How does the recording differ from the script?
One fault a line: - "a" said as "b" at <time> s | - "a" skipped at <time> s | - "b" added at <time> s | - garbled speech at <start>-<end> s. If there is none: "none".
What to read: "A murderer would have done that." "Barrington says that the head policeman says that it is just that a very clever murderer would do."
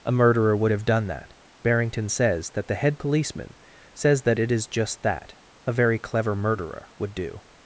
none